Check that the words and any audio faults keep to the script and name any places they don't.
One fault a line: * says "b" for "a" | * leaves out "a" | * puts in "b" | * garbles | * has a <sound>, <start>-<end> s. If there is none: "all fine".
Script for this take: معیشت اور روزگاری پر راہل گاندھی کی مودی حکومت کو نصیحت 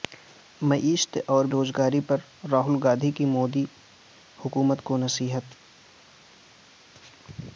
all fine